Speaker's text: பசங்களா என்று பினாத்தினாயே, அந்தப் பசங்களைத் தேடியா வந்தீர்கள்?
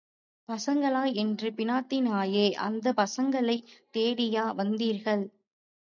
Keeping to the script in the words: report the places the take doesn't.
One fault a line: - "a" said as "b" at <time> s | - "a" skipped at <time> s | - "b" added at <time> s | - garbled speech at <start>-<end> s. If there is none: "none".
none